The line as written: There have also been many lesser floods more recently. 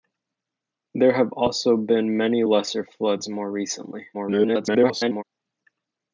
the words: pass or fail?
fail